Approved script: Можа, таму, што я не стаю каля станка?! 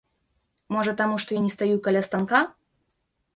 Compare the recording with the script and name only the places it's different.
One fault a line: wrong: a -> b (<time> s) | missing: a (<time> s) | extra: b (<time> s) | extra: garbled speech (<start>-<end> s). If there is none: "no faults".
no faults